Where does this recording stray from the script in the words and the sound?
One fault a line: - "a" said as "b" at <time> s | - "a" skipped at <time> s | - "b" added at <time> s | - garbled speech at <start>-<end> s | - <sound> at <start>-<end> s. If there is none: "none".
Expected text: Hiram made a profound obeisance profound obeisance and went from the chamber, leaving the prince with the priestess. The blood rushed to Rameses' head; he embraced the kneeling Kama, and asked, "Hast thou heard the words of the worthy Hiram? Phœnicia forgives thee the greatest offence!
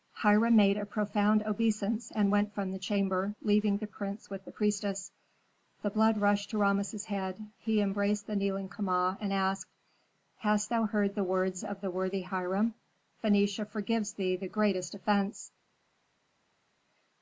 - "profound obeisance" skipped at 2.1 s